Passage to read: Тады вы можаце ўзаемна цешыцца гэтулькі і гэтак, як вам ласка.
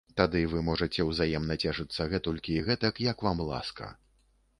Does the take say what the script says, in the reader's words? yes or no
yes